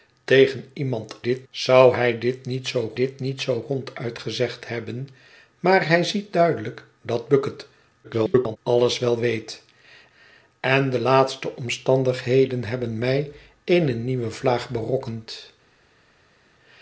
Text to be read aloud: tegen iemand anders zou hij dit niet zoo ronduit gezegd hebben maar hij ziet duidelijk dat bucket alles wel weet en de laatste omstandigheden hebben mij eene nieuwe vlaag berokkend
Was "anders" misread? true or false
true